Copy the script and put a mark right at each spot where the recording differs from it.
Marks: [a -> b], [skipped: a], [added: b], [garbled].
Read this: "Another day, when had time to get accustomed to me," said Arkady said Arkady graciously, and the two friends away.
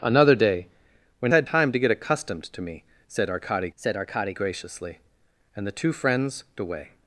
"Another day, when had time to get accustomed to me," said Arkady said Arkady graciously, and the two friends away.